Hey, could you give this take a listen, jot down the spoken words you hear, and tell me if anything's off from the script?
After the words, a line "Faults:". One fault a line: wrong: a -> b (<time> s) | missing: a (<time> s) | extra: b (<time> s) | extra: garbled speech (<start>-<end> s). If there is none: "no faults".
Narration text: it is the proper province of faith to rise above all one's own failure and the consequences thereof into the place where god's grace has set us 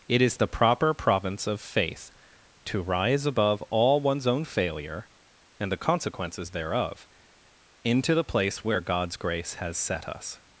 it is the proper province of faith to rise above all one's own failure and the consequences thereof into the place where god's grace has set us
Faults:
no faults